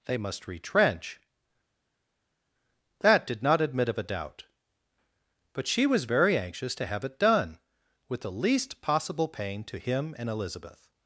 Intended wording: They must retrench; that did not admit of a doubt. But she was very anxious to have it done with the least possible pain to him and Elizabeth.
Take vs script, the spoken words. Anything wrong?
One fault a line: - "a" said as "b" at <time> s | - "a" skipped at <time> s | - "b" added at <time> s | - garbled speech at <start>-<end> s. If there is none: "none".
none